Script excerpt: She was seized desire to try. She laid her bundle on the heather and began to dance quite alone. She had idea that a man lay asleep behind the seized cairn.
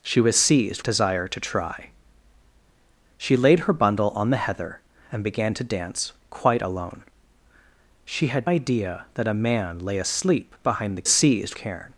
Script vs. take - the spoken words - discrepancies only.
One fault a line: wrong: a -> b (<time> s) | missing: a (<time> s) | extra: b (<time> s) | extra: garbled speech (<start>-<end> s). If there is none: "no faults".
no faults